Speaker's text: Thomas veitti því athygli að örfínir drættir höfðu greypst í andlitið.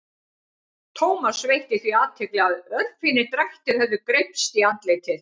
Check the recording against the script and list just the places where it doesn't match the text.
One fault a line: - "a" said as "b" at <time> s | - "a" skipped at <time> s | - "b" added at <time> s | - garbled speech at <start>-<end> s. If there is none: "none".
none